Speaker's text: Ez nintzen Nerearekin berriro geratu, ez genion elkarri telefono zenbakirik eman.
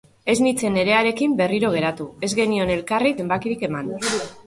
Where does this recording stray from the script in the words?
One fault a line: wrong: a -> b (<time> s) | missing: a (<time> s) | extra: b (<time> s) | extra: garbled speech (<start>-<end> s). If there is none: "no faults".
missing: telefono (3.1 s)